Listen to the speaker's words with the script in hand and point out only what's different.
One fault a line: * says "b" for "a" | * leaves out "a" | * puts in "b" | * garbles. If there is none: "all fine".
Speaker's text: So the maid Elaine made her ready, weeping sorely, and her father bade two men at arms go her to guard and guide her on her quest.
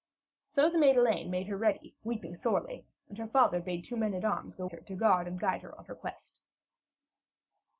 all fine